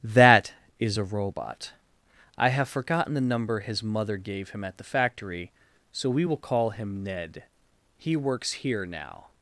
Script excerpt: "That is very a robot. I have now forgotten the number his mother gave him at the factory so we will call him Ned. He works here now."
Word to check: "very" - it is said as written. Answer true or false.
false